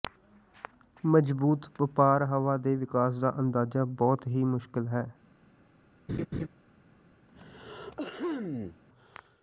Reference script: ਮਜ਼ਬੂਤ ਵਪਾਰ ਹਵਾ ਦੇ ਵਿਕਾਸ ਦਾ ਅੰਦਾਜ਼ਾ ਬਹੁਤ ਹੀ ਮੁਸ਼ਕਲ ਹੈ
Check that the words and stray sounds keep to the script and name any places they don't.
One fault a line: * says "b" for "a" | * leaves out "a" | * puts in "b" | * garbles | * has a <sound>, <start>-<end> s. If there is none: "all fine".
* has a laugh, 6.1-6.5 s
* has a throat clearing, 7.3-8.8 s